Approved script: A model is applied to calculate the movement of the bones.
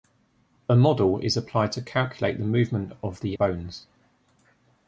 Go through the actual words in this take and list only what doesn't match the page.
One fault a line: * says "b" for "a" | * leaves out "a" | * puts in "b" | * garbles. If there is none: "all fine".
all fine